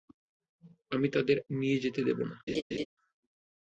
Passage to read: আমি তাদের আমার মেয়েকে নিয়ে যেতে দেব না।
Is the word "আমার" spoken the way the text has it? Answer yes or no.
no